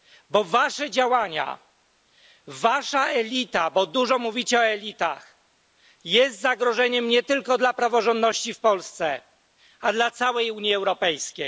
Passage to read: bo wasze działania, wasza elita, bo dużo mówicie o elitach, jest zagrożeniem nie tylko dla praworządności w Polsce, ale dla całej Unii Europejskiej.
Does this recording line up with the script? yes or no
yes